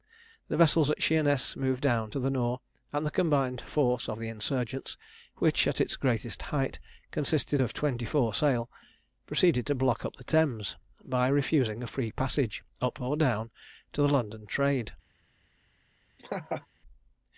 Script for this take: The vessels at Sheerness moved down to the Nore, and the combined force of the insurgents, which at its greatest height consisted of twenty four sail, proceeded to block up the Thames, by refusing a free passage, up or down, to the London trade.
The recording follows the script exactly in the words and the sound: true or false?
false